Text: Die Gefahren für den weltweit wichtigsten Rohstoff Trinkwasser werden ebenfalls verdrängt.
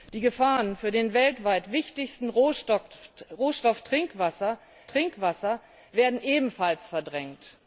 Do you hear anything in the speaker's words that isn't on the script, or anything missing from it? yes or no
yes